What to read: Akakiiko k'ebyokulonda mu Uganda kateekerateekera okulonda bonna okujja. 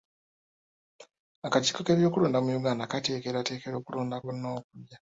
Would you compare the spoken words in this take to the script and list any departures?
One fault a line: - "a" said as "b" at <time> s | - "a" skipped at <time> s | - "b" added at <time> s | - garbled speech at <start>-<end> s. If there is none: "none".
none